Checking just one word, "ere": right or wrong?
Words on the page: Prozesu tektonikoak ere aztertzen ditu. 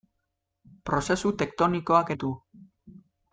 wrong